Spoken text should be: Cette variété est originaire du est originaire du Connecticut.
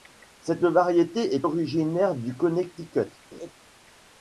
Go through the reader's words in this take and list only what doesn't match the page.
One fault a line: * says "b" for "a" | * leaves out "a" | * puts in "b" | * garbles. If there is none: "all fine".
* leaves out "est originaire du"